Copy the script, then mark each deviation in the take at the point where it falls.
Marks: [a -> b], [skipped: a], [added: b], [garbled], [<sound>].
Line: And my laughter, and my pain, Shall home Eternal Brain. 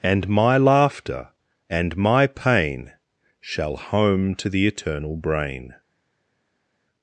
And my laughter, and my pain, Shall home [added: to the] Eternal Brain.